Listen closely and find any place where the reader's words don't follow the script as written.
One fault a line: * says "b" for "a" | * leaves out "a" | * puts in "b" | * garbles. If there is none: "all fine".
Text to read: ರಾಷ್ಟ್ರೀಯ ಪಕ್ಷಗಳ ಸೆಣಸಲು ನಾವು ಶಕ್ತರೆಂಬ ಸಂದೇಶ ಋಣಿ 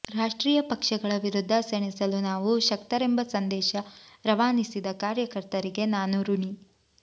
* puts in "ವಿರುದ್ಧ"
* puts in "ರವಾನಿಸಿದ ಕಾರ್ಯಕರ್ತರಿಗೆ ನಾನು"